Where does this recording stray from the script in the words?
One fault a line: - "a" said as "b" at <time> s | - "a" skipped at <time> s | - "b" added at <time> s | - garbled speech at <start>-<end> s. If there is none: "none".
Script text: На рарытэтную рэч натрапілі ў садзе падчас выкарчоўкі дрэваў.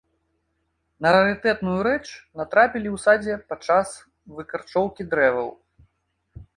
none